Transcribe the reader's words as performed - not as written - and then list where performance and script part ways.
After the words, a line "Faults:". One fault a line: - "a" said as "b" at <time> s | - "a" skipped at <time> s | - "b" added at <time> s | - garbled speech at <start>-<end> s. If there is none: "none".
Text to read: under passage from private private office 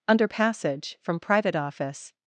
under passage from private office
Faults:
- "private" skipped at 1.5 s